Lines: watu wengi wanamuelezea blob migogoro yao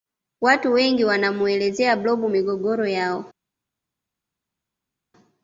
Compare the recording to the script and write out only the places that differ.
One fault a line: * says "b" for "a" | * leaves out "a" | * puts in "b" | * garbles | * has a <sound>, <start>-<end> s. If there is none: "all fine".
all fine